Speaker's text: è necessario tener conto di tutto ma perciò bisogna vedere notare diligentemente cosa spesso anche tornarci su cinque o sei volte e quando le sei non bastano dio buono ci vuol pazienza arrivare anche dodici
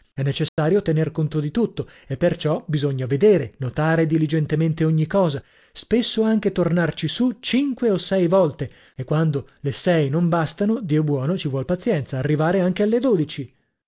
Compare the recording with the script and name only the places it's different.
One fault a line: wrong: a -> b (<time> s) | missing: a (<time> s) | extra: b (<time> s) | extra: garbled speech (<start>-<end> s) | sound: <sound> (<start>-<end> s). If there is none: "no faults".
sound: dropout (0.5-0.6 s)
wrong: ma -> e (2.1 s)
extra: ogni (4.8 s)
extra: alle (12.8 s)